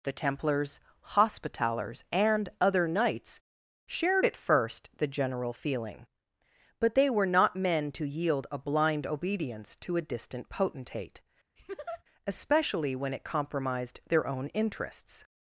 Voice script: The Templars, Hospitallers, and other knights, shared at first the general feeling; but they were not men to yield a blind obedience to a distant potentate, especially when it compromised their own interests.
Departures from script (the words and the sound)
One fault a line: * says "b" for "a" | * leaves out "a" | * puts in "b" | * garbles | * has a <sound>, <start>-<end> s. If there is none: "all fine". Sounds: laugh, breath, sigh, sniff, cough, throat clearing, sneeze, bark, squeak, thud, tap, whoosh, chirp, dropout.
* has a laugh, 11.6-12.0 s